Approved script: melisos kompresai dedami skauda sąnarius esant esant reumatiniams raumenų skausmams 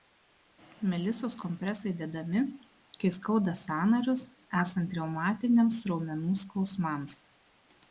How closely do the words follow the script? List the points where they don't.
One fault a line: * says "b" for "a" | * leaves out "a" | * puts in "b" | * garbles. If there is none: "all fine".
* puts in "kai"
* leaves out "esant"